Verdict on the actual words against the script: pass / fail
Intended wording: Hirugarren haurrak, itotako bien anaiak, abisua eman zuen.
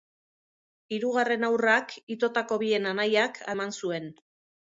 fail